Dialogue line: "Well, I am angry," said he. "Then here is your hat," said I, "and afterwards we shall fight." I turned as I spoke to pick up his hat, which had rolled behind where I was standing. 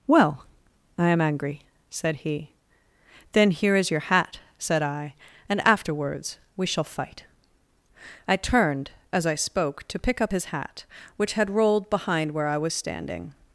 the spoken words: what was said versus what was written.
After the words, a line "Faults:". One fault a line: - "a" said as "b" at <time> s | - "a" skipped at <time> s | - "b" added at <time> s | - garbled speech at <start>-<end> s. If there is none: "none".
"Well, I am angry," said he. "Then here is your hat," said I, "and afterwards we shall fight." I turned as I spoke to pick up his hat, which had rolled behind where I was standing.
Faults:
none